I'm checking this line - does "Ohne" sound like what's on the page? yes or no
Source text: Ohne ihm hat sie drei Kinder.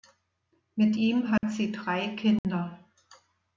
no